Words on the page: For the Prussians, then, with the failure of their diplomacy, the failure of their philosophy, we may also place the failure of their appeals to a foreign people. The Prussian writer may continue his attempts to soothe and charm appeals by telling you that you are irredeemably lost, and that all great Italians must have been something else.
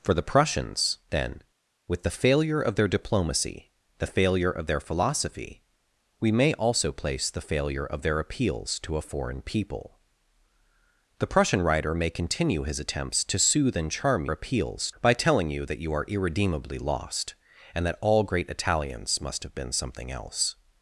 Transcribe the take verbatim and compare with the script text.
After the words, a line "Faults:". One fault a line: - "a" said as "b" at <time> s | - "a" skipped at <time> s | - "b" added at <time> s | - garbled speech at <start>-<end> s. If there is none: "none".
For the Prussians, then, with the failure of their diplomacy, the failure of their philosophy, we may also place the failure of their appeals to a foreign people. The Prussian writer may continue his attempts to soothe and charm appeals by telling you that you are irredeemably lost, and that all great Italians must have been something else.
Faults:
none